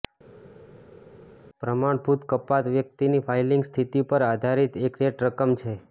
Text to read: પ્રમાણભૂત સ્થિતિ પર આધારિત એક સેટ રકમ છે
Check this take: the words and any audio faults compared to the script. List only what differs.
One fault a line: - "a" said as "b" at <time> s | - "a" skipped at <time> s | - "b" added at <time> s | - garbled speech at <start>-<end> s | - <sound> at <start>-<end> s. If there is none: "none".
- "કપાત વ્યક્તિની ફાઇલિંગ" added at 2.3 s